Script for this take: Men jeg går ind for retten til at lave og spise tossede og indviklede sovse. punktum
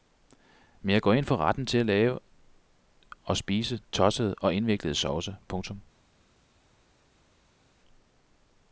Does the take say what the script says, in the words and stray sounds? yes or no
yes